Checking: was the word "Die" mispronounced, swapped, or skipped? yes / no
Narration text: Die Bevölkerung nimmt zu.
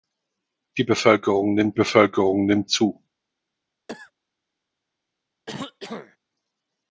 no